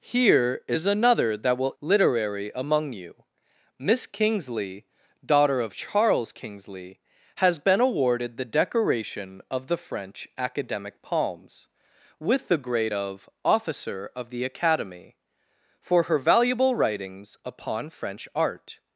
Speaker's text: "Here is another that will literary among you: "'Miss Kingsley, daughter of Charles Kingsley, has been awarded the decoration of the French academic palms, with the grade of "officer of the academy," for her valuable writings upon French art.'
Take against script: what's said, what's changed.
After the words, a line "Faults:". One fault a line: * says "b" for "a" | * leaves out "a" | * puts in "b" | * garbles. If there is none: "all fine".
"Here is another that will literary among you: "'Miss Kingsley, daughter of Charles Kingsley, has been awarded the decoration of the French academic palms, with the grade of "officer of the academy," for her valuable writings upon French art.'
Faults:
all fine